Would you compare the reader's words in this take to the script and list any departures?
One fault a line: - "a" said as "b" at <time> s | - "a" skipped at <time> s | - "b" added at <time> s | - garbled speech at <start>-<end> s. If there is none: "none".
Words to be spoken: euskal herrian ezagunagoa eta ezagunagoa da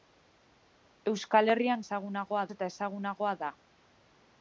none